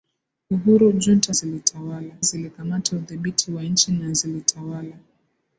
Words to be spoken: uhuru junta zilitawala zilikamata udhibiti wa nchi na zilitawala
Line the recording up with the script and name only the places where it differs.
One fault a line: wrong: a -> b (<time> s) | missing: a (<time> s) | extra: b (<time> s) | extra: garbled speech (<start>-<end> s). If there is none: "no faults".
no faults